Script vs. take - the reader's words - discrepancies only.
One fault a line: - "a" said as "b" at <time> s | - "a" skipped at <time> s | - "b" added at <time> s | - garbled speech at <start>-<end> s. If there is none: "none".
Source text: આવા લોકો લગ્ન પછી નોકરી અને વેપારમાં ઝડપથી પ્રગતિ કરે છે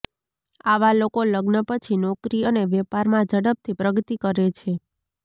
none